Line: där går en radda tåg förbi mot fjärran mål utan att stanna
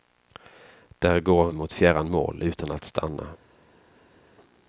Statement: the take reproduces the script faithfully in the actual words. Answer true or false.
false